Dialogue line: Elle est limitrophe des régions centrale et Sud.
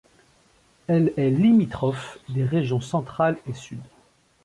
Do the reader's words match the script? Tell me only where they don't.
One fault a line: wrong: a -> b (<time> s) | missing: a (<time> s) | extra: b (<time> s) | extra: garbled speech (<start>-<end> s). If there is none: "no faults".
no faults